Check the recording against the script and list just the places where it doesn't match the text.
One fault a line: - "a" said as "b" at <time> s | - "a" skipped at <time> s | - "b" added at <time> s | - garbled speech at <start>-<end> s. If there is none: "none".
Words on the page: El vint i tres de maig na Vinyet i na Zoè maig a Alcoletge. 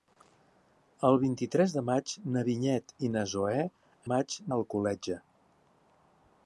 none